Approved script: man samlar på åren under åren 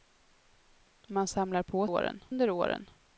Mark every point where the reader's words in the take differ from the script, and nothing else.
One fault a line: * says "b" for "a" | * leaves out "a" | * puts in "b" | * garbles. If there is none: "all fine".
all fine